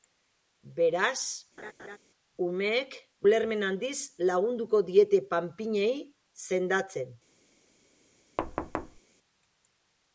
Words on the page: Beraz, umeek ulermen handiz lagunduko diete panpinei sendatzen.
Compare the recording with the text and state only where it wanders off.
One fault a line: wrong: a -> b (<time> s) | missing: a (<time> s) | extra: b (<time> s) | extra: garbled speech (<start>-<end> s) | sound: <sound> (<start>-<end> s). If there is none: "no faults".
sound: laugh (1.6-2.0 s)
sound: thud (8.4-9.0 s)